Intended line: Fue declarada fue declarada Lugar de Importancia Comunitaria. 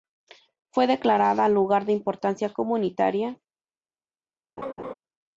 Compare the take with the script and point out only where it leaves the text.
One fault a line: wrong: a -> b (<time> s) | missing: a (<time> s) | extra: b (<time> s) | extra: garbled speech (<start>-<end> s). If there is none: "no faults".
missing: fue declarada (1.5 s)